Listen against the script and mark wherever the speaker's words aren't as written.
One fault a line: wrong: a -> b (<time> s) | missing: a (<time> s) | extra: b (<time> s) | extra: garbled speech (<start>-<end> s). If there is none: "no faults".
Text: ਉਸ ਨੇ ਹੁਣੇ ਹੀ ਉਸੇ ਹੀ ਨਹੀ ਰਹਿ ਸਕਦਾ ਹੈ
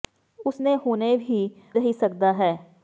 missing: ਉਸੇ ਹੀ ਨਹੀ (1.4 s)